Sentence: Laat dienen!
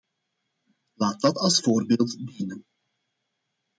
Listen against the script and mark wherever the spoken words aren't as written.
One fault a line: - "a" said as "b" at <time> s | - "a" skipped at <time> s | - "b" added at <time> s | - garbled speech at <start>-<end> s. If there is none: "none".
- "dat als voorbeeld" added at 1.2 s